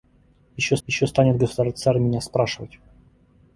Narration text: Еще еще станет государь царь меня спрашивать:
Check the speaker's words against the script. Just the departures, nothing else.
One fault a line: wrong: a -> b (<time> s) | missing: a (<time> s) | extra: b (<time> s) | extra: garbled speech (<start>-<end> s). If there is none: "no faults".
no faults